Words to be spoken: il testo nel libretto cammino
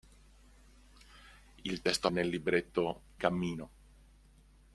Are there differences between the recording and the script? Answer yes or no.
no